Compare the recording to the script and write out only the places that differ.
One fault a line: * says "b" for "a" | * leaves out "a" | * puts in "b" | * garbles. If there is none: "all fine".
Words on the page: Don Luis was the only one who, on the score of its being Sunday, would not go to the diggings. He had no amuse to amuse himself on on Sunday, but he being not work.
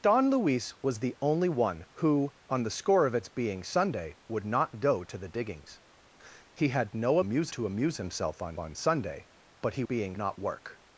all fine